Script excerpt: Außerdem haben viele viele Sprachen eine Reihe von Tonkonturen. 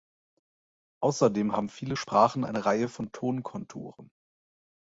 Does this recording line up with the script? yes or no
no